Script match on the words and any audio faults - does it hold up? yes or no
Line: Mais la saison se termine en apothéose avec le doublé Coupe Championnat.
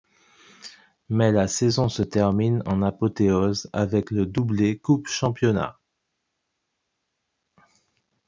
yes